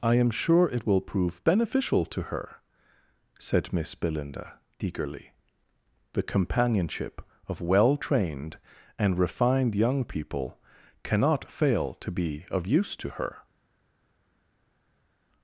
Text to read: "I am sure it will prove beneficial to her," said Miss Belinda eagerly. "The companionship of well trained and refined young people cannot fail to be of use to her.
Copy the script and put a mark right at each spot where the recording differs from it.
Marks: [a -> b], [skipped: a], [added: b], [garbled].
"I am sure it will prove beneficial to her," said Miss Belinda eagerly. "The companionship of well trained and refined young people cannot fail to be of use to her.